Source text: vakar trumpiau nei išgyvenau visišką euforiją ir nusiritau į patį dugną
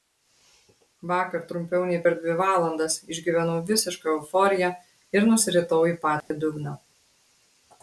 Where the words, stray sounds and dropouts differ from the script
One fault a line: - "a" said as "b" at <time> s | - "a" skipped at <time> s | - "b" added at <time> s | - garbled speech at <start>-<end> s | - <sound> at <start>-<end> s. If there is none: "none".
- "per dvi valandas" added at 2.0 s
- dropout at 6.2-6.3 s